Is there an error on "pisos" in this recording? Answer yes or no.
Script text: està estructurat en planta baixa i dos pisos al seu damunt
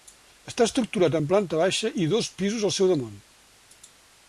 no